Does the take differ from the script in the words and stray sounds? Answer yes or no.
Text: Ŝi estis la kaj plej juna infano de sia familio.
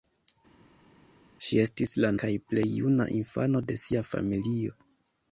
no